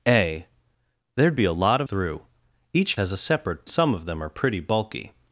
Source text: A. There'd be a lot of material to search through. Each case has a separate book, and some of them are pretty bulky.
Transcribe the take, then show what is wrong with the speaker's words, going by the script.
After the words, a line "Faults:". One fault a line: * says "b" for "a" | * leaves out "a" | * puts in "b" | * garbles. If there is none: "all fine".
A. There'd be a lot of through. Each has a separate some of them are pretty bulky.
Faults:
* leaves out "material to search"
* leaves out "case"
* leaves out "book and"